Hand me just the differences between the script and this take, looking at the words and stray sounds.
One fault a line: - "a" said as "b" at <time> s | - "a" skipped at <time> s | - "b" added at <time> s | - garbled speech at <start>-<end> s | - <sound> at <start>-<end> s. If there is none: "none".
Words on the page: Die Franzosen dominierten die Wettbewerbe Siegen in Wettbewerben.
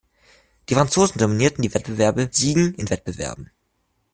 none